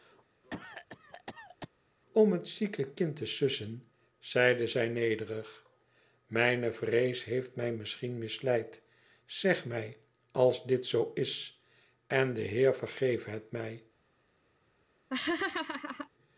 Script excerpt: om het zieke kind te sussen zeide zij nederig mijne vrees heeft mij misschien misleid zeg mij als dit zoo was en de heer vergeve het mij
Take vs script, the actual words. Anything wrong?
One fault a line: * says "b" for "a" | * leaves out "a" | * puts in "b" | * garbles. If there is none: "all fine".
* says "is" for "was"